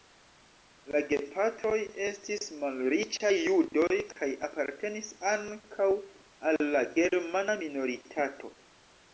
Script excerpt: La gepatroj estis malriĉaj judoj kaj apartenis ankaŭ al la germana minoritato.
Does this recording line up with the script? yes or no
yes